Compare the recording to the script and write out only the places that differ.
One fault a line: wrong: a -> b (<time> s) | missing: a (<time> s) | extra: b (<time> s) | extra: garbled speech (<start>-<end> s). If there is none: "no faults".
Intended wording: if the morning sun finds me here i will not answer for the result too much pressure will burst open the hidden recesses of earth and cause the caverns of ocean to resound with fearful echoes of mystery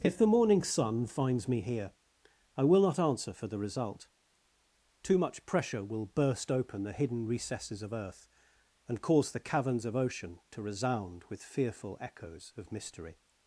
no faults